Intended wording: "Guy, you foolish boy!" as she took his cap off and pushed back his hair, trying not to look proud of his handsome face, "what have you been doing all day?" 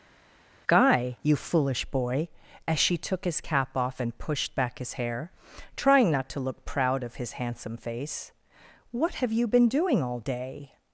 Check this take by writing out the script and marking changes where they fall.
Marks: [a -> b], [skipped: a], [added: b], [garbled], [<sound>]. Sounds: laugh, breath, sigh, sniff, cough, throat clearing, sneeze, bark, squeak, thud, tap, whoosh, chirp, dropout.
"Guy, you foolish boy!" as she took his cap off and pushed back his hair, trying not to look proud of his handsome face, "what have you been doing all day?"